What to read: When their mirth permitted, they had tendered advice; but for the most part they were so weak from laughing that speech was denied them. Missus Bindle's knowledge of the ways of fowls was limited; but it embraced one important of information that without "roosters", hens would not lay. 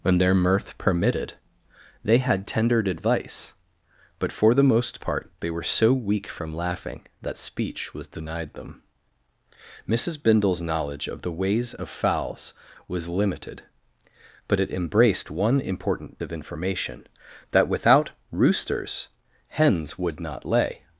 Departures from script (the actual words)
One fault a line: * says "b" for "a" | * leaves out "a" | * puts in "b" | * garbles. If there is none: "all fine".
all fine